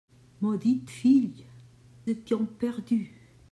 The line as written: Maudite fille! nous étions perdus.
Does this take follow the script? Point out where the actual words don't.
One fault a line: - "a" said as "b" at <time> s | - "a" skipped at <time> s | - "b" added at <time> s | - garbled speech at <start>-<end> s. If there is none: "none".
- "nous" skipped at 1.5 s